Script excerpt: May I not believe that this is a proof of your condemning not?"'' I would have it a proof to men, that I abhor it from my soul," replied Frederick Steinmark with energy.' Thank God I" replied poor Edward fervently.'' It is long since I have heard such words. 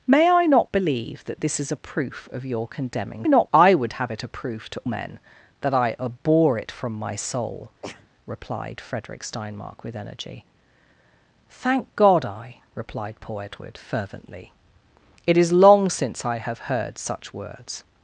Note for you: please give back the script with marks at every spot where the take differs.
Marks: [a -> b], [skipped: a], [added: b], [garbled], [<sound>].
May I not believe that this is a proof of your condemning not?"'' I would have it a proof to men, that I abhor it from my soul," [sneeze] replied Frederick Steinmark with energy.' Thank God I" replied poor Edward fervently.'' It is long since I have heard such words.